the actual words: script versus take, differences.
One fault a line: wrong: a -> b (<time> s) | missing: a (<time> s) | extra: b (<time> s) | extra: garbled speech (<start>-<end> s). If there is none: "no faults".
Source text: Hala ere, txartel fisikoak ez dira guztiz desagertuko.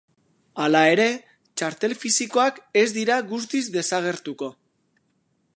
no faults